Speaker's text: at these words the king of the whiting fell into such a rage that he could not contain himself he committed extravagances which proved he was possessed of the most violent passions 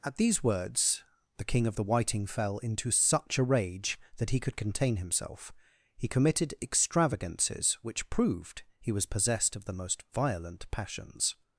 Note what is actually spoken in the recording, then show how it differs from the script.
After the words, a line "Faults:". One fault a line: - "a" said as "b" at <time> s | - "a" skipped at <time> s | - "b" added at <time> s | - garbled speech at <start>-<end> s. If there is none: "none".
at these words the king of the whiting fell into such a rage that he could contain himself he committed extravagances which proved he was possessed of the most violent passions
Faults:
- "not" skipped at 4.6 s